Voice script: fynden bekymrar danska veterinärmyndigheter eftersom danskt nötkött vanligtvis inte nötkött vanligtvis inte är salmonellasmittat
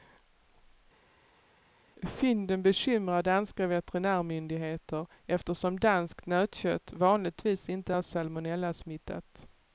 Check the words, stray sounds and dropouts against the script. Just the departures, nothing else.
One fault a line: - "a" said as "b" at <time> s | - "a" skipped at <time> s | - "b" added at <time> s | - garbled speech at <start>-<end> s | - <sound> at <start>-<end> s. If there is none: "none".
- "nötkött vanligtvis inte" skipped at 7.9 s